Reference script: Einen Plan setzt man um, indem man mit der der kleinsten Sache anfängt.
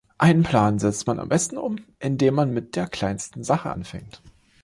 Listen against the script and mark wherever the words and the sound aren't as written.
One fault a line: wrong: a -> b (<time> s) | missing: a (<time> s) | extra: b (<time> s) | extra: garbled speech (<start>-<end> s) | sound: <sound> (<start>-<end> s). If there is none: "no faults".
extra: am besten (1.2 s)
missing: der (2.9 s)